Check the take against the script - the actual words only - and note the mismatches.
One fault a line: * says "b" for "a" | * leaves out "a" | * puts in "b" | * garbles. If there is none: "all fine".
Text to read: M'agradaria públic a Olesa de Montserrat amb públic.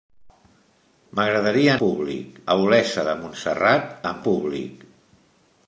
all fine